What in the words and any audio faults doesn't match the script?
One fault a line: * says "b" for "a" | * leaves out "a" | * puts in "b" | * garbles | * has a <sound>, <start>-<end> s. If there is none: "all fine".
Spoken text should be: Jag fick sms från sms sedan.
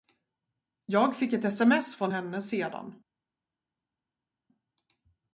* puts in "ett"
* says "henne" for "sms"